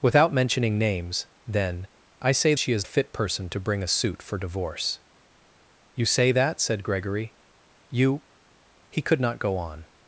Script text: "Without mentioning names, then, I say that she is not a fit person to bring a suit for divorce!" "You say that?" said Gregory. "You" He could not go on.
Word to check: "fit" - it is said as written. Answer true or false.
true